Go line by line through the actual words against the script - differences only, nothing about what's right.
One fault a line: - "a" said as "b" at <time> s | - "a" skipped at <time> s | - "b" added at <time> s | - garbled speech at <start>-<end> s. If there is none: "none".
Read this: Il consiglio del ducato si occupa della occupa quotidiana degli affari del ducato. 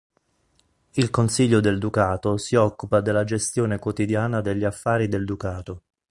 - "occupa" said as "gestione" at 3.2 s